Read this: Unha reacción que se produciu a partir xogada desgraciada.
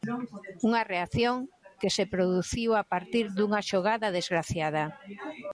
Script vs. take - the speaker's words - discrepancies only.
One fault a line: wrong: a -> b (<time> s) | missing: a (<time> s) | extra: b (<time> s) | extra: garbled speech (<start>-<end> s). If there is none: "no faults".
extra: dunha (3.4 s)